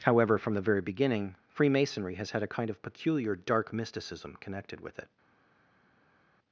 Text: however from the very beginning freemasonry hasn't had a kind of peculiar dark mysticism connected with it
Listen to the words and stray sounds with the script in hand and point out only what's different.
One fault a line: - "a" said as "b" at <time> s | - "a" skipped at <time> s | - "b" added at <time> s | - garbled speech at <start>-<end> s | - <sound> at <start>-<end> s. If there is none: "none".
- "hasn't" said as "has" at 2.1 s